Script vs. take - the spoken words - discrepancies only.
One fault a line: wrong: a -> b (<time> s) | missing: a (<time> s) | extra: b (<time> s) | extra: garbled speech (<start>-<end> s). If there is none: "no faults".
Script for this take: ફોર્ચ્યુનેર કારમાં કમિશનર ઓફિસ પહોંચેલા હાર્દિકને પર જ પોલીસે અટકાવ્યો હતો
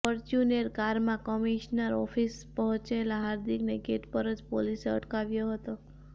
extra: ગેટ (3.8 s)